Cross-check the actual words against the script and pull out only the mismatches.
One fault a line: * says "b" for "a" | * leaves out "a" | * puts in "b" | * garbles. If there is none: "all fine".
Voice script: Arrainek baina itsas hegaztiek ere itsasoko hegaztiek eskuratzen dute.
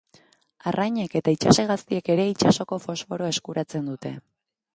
* says "eta" for "baina"
* says "fosforoa" for "hegaztiek"